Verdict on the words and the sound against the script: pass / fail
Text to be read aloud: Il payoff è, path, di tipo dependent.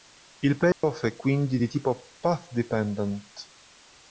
fail